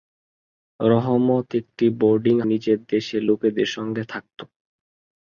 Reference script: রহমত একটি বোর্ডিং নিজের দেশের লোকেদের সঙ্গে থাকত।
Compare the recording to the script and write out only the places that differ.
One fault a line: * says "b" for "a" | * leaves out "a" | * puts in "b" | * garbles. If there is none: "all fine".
all fine